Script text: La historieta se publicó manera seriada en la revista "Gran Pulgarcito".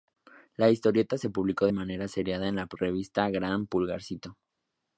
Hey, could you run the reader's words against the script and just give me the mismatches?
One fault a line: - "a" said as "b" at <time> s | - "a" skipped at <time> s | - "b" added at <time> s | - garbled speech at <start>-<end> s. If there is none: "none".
none